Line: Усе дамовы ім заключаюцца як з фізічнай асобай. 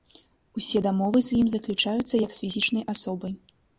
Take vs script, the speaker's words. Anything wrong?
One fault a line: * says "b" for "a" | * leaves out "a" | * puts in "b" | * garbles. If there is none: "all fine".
* puts in "з"